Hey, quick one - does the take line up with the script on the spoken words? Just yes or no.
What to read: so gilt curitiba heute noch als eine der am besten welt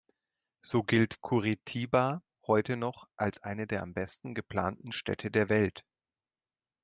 no